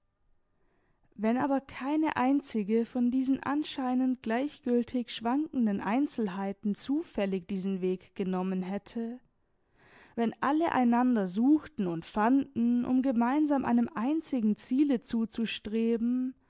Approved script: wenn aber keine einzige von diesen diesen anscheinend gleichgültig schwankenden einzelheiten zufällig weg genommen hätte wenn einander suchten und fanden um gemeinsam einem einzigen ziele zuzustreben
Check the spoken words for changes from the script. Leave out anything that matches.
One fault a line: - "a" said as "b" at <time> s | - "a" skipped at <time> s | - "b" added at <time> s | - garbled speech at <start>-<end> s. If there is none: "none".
- "diesen" skipped at 3.4 s
- "diesen" added at 7.5 s
- "alle" added at 10.4 s